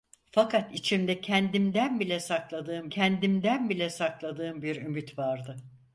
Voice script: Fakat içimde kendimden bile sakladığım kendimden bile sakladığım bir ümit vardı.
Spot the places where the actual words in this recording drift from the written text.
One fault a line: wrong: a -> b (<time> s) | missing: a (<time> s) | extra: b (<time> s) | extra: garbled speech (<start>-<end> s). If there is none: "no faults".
no faults